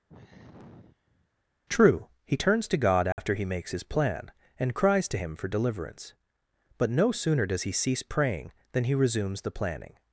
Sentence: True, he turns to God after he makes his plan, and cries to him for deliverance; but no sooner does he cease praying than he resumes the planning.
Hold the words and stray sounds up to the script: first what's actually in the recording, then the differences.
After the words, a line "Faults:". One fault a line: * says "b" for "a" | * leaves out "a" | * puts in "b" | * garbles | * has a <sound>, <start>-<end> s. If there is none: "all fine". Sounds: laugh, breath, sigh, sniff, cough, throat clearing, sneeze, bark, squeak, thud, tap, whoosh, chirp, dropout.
True, he turns to God after he makes his plan, and cries to him for deliverance; but no sooner does he cease praying than he resumes the planning.
Faults:
* has a sigh, 0.1-1.3 s
* has a dropout, 3.1-3.2 s